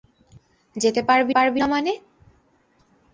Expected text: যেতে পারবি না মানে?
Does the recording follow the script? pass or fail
fail